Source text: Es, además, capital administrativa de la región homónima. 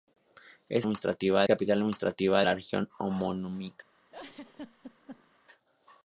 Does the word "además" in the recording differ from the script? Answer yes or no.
yes